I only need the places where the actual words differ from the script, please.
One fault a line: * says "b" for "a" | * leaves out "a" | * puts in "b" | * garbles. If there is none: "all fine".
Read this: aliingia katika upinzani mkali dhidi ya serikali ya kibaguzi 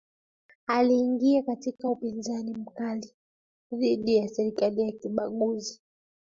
all fine